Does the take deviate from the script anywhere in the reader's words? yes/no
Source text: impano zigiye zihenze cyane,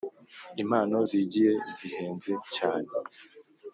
no